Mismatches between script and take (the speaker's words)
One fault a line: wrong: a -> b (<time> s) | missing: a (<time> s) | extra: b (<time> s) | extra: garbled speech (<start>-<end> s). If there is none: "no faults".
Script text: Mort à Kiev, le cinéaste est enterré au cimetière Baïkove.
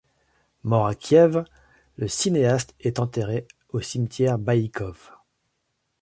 no faults